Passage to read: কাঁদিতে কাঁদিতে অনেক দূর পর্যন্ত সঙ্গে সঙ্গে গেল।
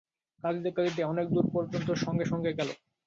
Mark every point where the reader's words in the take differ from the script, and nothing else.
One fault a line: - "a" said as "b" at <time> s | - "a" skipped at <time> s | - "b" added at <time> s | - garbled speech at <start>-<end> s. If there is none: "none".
none